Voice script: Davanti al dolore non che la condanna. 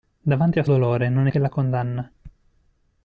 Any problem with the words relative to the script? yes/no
no